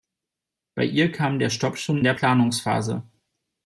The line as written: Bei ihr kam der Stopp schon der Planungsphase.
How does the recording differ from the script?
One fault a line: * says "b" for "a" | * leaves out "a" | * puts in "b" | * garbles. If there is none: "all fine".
all fine